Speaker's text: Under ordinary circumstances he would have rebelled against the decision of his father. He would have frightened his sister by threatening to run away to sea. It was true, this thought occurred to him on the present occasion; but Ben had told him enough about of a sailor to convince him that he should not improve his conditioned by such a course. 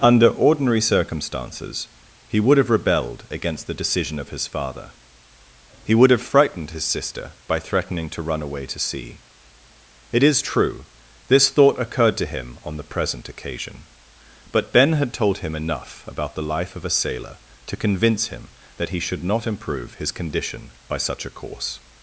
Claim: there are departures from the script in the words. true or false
true